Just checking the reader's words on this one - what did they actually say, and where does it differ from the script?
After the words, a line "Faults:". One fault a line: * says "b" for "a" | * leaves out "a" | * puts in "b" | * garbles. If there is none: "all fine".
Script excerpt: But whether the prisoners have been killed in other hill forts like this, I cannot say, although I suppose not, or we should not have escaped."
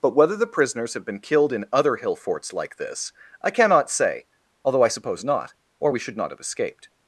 But whether the prisoners have been killed in other hill forts like this, I cannot say, although I suppose not, or we should not have escaped."
Faults:
all fine